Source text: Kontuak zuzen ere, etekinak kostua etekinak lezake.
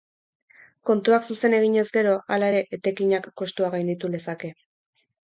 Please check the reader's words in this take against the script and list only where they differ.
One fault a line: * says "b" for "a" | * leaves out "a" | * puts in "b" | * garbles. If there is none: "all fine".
* puts in "eginez gero hala"
* says "gainditu" for "etekinak"